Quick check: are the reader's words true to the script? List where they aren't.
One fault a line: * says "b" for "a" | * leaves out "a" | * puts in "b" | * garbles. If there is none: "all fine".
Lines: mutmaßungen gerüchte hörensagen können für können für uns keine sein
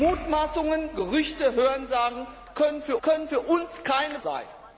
all fine